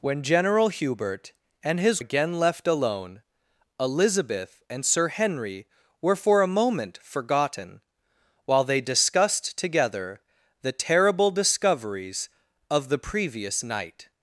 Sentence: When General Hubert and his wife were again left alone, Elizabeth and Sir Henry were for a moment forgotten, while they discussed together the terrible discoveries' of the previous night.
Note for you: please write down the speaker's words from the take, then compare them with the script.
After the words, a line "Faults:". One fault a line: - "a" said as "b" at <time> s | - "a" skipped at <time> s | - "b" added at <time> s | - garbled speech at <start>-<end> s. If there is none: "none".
When General Hubert and his again left alone, Elizabeth and Sir Henry were for a moment forgotten, while they discussed together the terrible discoveries' of the previous night.
Faults:
- "wife were" skipped at 2.0 s